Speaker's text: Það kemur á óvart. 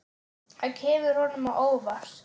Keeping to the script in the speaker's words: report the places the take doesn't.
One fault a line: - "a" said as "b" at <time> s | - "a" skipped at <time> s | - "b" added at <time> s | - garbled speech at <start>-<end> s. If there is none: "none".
- "honum" added at 1.2 s